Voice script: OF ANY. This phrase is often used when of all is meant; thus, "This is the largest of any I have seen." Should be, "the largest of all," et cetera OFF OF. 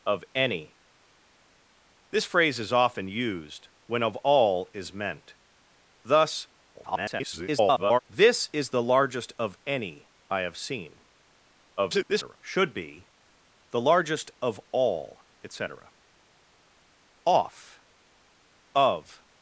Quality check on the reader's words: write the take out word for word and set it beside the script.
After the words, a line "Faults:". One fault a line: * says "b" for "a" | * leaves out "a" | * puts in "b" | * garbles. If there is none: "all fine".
OF ANY. This phrase is often used when of all is meant; thus, [garbled] "This is the largest of any I have seen." [garbled] Should be, "the largest of all," et cetera OFF OF.
Faults:
* garbles
* garbles